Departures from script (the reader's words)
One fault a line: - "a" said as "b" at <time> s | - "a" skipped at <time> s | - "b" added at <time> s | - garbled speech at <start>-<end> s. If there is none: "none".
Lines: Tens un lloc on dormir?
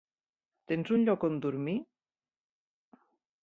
none